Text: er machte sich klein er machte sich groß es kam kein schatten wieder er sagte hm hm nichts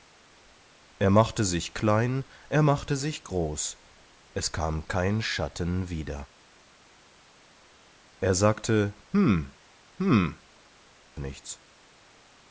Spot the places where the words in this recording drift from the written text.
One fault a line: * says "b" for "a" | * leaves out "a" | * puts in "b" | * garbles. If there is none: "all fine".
all fine